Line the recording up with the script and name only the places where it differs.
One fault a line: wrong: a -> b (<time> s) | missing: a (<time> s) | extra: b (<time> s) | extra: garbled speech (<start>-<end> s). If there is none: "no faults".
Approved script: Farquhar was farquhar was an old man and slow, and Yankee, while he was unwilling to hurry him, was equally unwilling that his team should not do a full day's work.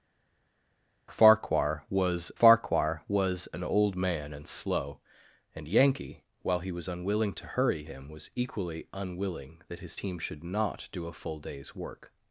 no faults